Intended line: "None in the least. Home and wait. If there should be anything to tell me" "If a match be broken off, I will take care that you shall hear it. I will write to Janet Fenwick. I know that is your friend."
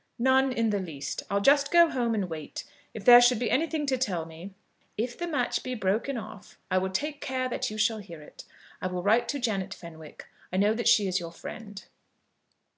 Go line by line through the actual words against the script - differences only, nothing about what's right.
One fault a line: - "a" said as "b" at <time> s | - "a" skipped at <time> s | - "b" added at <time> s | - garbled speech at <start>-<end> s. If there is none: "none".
- "I'll just go" added at 1.3 s
- "a" said as "the" at 5.2 s
- "she" added at 10.9 s